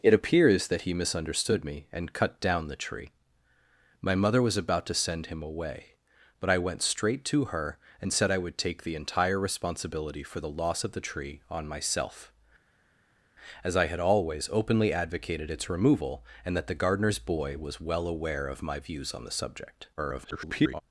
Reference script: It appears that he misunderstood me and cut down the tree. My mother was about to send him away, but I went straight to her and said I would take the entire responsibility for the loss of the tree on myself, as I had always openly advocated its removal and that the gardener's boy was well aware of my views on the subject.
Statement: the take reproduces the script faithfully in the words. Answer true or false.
false